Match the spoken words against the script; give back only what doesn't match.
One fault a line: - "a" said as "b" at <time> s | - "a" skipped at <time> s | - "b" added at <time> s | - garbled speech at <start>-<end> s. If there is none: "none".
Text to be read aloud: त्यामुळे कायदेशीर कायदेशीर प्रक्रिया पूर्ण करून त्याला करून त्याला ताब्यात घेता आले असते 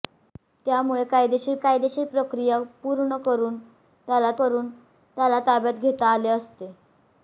none